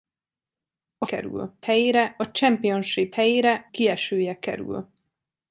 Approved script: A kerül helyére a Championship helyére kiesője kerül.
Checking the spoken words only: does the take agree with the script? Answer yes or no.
yes